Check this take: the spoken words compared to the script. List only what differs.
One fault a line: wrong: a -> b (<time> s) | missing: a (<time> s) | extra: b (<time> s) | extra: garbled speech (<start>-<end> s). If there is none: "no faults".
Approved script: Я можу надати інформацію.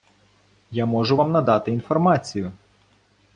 extra: вам (1.2 s)